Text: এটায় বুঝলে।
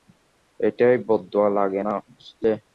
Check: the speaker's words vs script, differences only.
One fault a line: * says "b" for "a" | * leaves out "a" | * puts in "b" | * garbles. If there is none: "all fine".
* puts in "বদদোয়া লাগে না"